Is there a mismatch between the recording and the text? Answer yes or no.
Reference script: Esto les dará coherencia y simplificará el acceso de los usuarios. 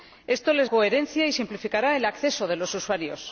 yes